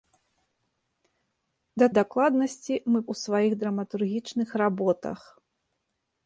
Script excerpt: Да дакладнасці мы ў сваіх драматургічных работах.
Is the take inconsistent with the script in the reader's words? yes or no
no